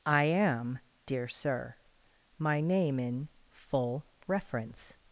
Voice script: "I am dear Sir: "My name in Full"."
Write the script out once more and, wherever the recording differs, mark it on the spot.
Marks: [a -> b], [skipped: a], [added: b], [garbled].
"I am dear Sir: "My name in Full"." [added: reference]